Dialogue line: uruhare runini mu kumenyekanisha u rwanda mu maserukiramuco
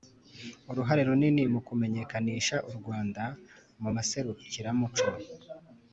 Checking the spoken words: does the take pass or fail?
pass